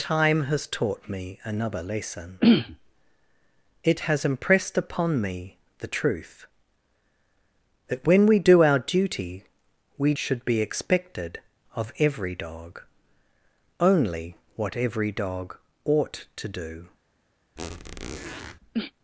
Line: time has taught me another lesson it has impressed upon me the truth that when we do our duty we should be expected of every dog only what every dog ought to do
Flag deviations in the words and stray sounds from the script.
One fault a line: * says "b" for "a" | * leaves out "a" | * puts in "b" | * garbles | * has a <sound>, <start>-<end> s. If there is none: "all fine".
* has a squeak, 17.6-18.6 s